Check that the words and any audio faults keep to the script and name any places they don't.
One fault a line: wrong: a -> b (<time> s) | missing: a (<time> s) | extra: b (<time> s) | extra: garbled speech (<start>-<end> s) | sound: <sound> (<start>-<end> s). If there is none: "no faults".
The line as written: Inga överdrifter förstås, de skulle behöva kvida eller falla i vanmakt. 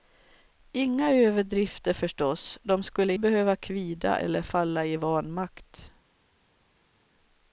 no faults